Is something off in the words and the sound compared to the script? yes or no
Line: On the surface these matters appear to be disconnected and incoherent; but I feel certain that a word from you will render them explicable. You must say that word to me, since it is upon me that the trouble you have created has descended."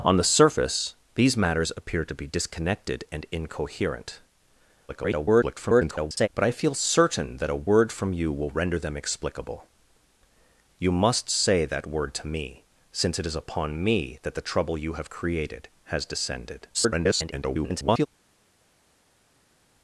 yes